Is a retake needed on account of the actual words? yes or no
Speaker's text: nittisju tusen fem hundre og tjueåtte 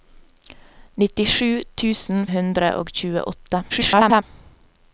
yes